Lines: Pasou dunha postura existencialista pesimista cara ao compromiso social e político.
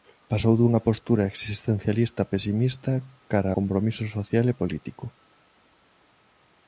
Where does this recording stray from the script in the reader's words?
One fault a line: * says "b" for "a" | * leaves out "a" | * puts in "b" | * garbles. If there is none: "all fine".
* leaves out "ao"